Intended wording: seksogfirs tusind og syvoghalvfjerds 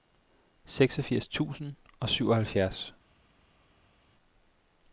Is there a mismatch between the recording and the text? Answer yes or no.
no